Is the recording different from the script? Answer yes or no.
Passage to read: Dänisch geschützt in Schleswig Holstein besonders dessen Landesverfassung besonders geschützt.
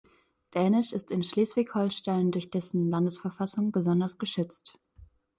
yes